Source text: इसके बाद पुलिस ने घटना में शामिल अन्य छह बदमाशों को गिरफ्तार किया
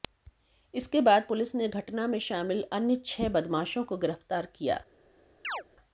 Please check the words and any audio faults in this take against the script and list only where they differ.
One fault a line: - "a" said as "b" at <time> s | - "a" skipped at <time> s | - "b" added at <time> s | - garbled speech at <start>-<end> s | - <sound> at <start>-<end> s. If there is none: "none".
- chirp at 5.4-5.6 s